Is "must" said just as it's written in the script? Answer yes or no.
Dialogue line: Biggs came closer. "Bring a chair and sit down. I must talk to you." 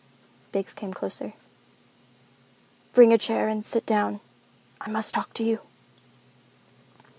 yes